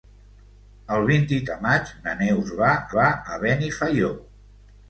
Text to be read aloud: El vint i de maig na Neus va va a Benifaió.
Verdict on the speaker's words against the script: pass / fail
pass